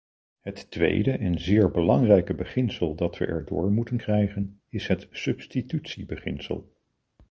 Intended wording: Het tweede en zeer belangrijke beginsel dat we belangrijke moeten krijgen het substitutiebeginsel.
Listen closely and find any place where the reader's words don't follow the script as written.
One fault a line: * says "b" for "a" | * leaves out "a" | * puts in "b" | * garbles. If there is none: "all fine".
* says "erdoor" for "belangrijke"
* puts in "is"